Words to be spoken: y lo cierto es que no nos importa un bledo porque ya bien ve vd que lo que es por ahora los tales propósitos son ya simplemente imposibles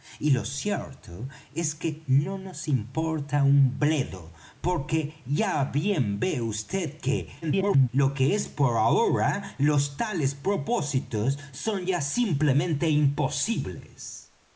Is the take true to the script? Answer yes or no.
no